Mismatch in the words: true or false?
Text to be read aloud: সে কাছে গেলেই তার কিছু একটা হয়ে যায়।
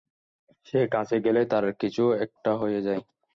false